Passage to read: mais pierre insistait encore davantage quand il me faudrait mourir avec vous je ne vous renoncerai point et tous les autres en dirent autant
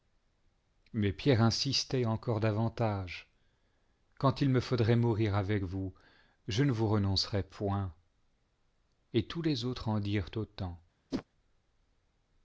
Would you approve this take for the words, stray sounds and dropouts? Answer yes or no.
no